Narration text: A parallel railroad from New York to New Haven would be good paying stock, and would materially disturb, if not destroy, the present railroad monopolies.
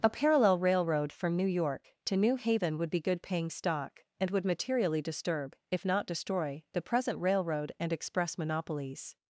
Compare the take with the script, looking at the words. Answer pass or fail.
fail